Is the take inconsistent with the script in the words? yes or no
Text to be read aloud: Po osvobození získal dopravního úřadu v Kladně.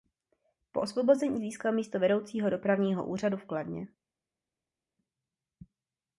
yes